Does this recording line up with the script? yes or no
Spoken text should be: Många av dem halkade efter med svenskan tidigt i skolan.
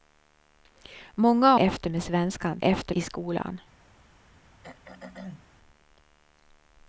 no